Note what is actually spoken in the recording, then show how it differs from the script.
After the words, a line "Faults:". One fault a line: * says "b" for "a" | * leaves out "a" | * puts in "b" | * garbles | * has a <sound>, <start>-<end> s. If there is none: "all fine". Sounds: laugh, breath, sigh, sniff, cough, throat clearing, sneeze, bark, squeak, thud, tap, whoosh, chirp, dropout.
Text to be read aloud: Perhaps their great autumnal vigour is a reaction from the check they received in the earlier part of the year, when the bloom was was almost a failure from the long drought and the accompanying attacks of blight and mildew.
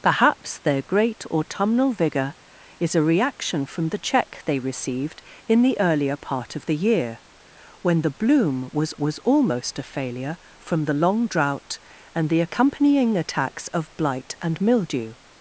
Perhaps their great autumnal vigour is a reaction from the check they received in the earlier part of the year, when the bloom was was almost a failure from the long drought and the accompanying attacks of blight and mildew.
Faults:
all fine